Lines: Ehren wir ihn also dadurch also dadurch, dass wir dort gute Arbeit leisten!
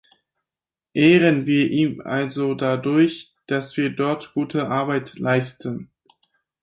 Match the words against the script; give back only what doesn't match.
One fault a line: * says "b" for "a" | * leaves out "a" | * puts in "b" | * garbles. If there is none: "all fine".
* leaves out "also dadurch"